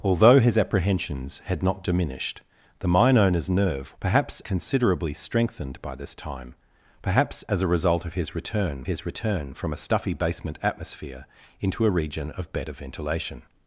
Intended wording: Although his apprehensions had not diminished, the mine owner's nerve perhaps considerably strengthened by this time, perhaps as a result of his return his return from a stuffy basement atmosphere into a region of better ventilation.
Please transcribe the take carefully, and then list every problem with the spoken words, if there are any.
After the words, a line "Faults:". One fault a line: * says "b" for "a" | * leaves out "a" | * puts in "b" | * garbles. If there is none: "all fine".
Although his apprehensions had not diminished, the mine owner's nerve perhaps considerably strengthened by this time, perhaps as a result of his return his return from a stuffy basement atmosphere into a region of better ventilation.
Faults:
all fine